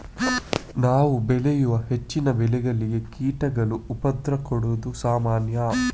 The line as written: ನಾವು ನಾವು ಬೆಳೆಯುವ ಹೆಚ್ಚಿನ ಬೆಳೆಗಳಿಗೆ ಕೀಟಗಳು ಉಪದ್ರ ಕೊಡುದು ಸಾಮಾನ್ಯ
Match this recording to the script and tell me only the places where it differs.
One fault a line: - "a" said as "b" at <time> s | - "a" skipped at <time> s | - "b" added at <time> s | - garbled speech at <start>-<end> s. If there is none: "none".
- "ನಾವು" skipped at 1.1 s